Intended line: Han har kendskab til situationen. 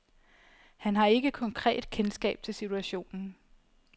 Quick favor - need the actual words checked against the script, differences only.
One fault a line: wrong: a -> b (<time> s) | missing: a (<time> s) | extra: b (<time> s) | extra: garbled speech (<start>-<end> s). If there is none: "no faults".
extra: ikke konkret (1.1 s)